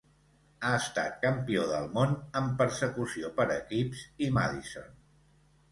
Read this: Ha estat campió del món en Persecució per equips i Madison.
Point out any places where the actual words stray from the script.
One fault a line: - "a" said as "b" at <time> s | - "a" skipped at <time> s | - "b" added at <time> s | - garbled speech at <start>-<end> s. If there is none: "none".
none